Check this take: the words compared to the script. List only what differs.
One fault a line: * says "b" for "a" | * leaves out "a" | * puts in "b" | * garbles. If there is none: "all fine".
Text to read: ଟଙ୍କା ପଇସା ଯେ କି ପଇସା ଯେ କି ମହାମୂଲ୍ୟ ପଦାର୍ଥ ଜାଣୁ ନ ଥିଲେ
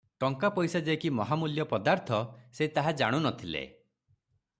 * says "ମହାମୂଲ୍ୟ ପଦାର୍ଥ ସେ ତାହା" for "ପଇସା ଯେ କି ମହାମୂଲ୍ୟ ପଦାର୍ଥ"